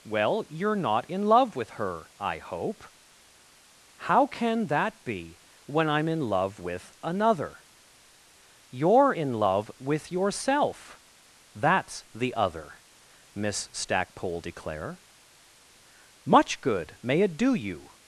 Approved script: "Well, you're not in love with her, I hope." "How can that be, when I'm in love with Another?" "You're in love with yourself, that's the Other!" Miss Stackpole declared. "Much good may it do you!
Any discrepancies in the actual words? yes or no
yes